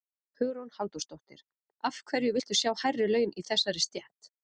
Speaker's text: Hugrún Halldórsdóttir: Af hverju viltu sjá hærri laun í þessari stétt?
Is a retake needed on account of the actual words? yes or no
no